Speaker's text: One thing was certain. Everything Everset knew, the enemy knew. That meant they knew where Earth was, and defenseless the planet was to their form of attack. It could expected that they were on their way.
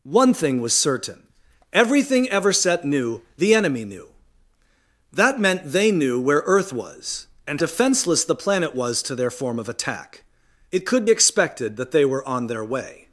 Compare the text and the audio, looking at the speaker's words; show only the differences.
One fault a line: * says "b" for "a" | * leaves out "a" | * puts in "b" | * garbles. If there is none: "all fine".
all fine